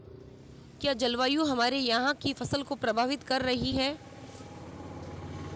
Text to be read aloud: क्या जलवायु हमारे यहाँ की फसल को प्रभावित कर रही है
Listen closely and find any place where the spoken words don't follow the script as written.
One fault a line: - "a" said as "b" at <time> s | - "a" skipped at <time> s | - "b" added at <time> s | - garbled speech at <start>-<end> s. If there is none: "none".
none